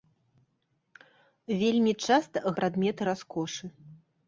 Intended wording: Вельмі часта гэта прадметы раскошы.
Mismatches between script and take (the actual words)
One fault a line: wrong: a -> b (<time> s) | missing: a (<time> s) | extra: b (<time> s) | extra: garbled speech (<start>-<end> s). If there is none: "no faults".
missing: гэта (2.4 s)